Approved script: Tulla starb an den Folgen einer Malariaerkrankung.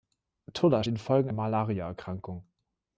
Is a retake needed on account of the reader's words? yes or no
yes